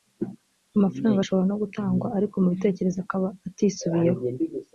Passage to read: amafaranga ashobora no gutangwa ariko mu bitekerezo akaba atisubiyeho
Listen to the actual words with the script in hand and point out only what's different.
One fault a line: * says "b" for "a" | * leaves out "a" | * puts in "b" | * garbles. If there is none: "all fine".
all fine